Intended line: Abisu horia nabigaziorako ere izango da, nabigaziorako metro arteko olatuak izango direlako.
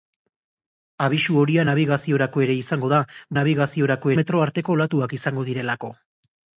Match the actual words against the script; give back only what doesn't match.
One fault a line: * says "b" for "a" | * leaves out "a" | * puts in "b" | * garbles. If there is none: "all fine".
all fine